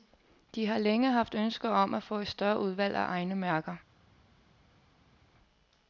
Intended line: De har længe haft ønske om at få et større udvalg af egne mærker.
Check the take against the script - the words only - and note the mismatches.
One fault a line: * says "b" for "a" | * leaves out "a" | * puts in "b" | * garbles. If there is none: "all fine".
all fine